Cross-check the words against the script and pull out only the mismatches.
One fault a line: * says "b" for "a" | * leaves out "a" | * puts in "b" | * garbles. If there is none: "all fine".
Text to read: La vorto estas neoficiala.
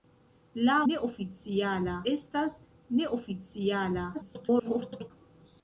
* says "neoficiala" for "vorto"
* garbles